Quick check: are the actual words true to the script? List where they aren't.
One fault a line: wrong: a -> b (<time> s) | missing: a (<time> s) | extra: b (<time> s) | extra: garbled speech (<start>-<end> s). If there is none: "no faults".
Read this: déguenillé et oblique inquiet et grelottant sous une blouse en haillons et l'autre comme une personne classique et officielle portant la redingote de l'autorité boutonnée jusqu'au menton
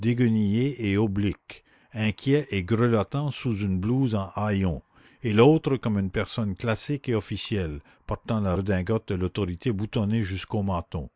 no faults